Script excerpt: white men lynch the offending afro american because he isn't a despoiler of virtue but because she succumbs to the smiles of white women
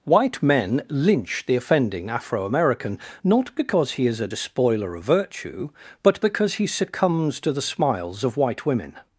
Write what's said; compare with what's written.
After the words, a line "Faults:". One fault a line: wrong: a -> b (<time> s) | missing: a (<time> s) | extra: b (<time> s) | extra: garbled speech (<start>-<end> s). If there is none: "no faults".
white men lynch the offending afro american not because he is a despoiler of virtue but because he succumbs to the smiles of white women
Faults:
extra: not (3.2 s)
wrong: isn't -> is (4.1 s)
wrong: she -> he (6.5 s)